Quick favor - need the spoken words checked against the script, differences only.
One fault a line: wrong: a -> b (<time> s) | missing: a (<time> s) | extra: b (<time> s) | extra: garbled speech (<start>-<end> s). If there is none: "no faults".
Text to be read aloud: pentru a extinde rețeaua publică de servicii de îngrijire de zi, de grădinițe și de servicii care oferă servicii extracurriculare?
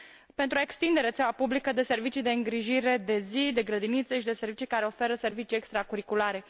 no faults